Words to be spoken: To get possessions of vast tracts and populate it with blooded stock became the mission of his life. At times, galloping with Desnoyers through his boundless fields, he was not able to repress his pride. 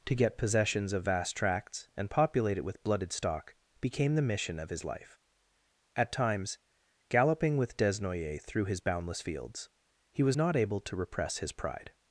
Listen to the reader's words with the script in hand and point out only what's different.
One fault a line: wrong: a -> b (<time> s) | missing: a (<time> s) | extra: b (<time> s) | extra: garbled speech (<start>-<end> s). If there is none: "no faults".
no faults